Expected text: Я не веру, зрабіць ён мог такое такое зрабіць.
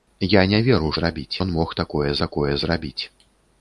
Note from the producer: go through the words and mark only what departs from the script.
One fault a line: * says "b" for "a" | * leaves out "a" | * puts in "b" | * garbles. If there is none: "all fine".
all fine